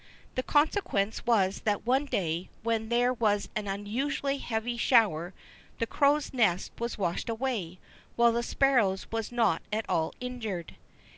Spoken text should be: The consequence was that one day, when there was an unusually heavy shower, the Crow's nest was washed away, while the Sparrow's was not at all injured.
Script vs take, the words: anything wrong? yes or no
no